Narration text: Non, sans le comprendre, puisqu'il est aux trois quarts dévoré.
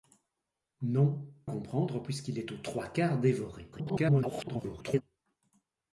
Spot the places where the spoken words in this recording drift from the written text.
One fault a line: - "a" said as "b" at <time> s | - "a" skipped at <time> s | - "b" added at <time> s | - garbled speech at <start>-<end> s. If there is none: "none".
- "sans le" skipped at 1.3 s
- garbled speech at 3.7-5.0 s